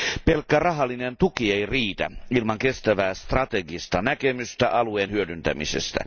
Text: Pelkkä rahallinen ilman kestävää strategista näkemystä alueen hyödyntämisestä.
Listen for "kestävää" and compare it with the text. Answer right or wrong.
right